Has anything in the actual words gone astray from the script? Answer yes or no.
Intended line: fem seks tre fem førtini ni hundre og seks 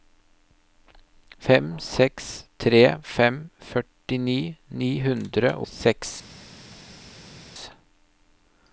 yes